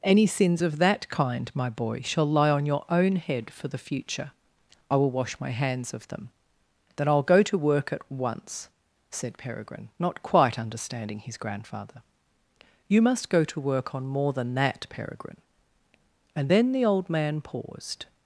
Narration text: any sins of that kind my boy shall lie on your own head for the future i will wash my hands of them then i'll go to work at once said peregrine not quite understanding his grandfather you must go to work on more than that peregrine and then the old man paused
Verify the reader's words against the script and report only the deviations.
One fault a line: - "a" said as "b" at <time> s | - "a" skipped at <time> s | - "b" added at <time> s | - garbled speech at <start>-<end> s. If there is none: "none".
none